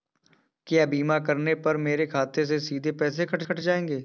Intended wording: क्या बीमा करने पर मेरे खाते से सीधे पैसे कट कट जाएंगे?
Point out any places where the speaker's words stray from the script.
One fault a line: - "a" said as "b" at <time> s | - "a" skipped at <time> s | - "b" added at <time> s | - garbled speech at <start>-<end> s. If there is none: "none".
none